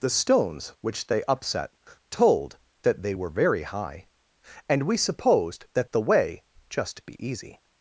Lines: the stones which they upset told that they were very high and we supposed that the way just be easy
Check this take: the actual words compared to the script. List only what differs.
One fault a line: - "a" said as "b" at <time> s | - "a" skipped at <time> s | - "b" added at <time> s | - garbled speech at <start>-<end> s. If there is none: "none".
none